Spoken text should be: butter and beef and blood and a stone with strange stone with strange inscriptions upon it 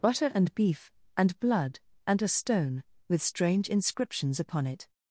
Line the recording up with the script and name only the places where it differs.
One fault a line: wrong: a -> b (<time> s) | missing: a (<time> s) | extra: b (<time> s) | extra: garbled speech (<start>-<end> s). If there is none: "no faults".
missing: stone with strange (3.7 s)